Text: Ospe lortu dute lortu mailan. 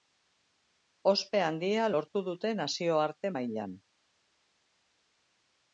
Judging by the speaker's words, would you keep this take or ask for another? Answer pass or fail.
fail